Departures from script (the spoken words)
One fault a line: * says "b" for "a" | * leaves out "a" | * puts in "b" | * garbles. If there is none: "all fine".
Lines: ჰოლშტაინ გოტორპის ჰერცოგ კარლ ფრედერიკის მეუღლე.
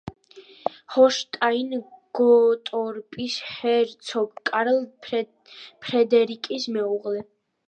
all fine